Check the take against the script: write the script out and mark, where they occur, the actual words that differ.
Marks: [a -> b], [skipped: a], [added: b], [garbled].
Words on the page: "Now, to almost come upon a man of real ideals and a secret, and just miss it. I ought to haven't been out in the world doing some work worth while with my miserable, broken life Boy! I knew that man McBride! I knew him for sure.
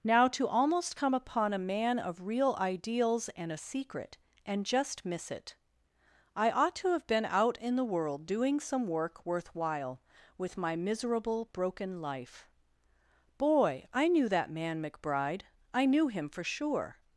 "Now, to almost come upon a man of real ideals and a secret, and just miss it. I ought to [haven't -> have] been out in the world doing some work worth while with my miserable, broken life Boy! I knew that man McBride! I knew him for sure.